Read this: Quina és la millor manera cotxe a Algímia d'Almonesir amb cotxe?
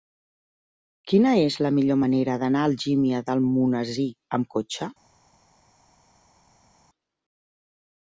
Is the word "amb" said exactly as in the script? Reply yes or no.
yes